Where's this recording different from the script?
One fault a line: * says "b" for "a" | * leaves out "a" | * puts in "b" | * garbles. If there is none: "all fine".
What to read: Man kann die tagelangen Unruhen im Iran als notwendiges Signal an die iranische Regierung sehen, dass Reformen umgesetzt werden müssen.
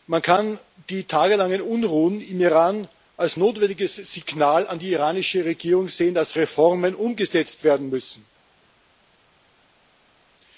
all fine